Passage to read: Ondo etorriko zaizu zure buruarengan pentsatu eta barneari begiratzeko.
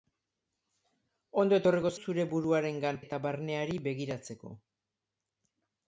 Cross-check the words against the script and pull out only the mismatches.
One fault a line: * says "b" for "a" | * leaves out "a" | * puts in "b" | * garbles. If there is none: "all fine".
* leaves out "zaizu"
* leaves out "pentsatu"